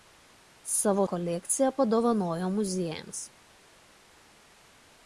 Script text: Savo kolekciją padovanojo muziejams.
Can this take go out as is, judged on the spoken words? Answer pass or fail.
pass